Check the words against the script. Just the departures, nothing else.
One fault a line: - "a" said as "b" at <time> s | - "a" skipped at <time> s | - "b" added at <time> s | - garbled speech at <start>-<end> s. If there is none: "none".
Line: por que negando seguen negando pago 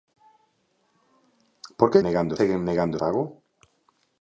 none